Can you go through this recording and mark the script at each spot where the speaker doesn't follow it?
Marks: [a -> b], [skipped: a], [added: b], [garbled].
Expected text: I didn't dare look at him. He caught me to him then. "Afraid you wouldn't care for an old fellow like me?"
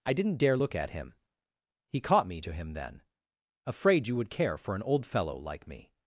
I didn't dare look at him. He caught me to him then. "Afraid you [wouldn't -> would] care for an old fellow like me?"